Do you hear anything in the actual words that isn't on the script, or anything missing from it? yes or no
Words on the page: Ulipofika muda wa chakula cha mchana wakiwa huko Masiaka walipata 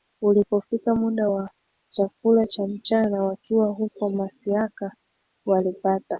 no